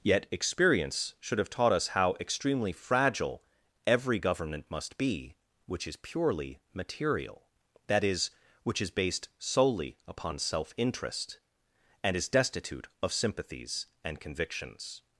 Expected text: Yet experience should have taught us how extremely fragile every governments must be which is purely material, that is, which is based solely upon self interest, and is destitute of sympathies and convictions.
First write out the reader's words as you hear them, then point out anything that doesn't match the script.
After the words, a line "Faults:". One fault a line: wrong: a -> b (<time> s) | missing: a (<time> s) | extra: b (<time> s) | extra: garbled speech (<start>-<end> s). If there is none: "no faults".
Yet experience should have taught us how extremely fragile every government must be which is purely material, that is, which is based solely upon self interest, and is destitute of sympathies and convictions.
Faults:
wrong: governments -> government (4.2 s)